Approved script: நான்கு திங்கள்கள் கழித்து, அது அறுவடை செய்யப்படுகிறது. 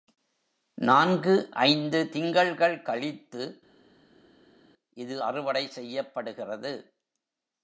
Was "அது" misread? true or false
true